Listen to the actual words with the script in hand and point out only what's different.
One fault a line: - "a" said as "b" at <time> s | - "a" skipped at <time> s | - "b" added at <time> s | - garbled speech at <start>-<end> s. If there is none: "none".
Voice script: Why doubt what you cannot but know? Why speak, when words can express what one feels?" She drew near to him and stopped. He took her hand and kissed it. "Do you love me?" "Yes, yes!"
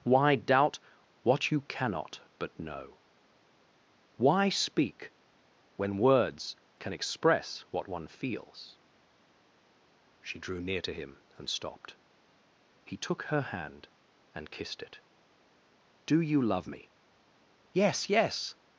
none